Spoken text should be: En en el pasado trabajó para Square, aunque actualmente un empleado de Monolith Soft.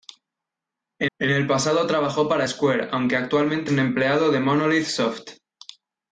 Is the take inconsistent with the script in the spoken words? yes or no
no